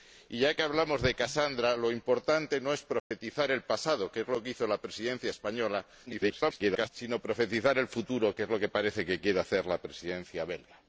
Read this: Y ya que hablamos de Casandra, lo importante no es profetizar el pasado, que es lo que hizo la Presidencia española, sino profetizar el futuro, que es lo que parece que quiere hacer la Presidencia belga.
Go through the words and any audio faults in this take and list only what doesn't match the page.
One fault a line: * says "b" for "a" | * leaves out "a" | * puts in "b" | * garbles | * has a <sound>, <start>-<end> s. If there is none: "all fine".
* has a dropout, 3.0-3.1 s
* garbles